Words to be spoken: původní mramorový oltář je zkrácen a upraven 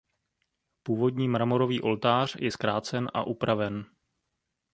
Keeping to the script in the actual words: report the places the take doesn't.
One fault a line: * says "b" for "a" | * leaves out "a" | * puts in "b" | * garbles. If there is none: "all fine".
all fine